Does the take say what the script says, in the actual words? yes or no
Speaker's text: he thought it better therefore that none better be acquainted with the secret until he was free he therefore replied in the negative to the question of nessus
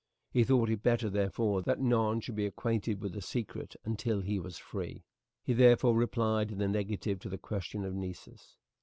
no